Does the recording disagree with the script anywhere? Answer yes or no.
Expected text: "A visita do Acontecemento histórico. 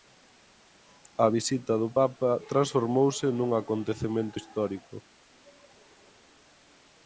yes